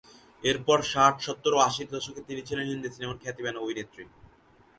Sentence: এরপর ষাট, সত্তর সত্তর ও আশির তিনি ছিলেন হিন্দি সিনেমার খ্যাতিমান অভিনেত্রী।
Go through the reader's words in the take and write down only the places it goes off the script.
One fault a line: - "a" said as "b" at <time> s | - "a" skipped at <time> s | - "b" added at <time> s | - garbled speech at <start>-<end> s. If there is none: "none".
- "সত্তর" skipped at 1.5 s
- "দশকে" added at 1.9 s